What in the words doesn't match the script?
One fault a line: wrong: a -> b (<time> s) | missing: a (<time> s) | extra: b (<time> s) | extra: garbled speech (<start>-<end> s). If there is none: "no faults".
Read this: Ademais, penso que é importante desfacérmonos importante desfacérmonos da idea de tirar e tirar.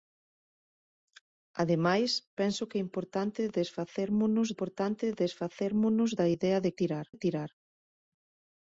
no faults